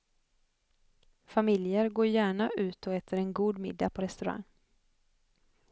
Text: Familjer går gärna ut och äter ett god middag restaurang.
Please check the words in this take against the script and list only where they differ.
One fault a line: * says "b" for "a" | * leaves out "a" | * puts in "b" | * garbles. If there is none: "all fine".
* says "en" for "ett"
* puts in "på"